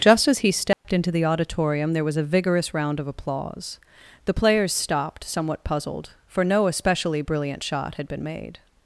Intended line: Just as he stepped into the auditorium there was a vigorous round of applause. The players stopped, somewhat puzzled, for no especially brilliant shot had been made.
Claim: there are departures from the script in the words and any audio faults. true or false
true